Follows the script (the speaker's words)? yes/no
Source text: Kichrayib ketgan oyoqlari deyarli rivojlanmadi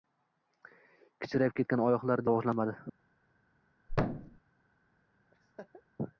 no